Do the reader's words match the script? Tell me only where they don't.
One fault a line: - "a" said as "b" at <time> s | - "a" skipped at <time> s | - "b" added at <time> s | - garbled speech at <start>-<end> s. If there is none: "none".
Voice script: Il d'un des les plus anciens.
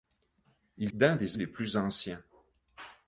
none